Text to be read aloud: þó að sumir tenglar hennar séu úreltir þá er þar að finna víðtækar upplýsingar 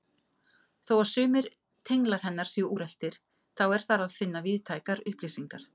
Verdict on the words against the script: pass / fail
pass